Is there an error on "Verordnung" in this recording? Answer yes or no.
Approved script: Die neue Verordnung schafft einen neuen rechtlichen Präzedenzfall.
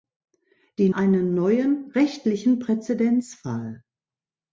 yes